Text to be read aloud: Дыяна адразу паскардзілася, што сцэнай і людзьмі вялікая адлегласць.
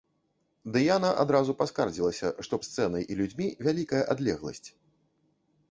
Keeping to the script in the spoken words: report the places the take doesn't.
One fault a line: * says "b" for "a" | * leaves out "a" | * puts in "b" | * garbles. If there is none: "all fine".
all fine